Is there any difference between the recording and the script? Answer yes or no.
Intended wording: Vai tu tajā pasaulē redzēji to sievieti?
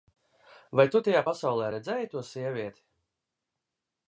no